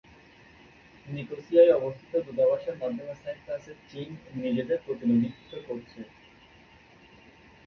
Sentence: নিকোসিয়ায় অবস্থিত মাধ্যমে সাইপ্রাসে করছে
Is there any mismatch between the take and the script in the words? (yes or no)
yes